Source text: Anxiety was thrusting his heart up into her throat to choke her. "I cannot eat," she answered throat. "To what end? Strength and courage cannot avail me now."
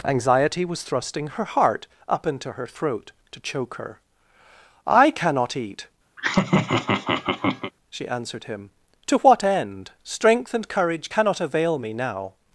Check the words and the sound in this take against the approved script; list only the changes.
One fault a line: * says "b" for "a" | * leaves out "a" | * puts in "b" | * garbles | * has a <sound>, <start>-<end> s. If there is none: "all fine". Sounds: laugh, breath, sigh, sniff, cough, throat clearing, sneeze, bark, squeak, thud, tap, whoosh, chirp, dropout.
* says "her" for "his"
* has a laugh, 6.2-7.7 s
* says "him" for "throat"